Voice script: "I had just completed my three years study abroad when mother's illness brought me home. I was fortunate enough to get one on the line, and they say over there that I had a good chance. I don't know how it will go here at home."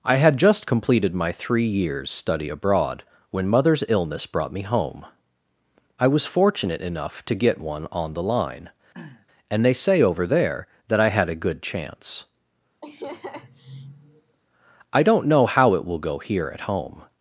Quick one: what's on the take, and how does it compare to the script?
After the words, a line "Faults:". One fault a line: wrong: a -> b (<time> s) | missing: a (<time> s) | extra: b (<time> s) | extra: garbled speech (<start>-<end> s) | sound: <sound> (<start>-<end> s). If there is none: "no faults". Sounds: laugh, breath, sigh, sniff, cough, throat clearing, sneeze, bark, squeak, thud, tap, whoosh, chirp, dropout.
"I had just completed my three years study abroad when mother's illness brought me home. I was fortunate enough to get one on the line, and they say over there that I had a good chance. I don't know how it will go here at home."
Faults:
sound: throat clearing (8.9-9.3 s)
sound: laugh (12.8-14.4 s)